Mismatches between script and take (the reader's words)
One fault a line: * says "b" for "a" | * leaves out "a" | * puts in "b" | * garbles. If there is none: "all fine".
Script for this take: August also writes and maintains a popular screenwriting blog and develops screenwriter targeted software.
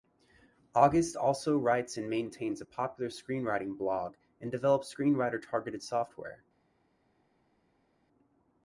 all fine